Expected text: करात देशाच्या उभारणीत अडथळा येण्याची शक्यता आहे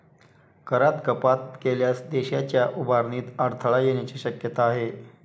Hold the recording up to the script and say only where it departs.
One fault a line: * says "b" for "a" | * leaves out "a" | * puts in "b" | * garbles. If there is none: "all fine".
* puts in "कपात केल्यास"